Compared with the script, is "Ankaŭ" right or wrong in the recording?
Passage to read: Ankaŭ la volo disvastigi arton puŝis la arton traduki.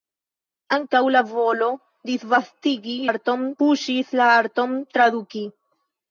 right